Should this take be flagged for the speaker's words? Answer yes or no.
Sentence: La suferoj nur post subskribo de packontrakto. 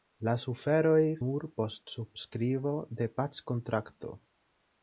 no